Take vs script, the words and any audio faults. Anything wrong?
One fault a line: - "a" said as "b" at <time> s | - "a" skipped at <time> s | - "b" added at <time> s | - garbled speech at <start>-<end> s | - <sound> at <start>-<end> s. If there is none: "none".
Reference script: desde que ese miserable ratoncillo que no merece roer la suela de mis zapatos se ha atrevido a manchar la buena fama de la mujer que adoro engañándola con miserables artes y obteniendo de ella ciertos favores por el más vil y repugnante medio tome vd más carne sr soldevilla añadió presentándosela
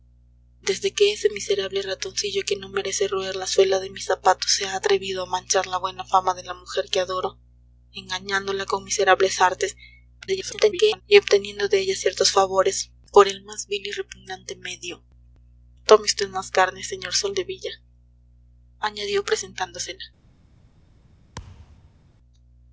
- garbled speech at 10.2-11.0 s
- thud at 21.3-22.0 s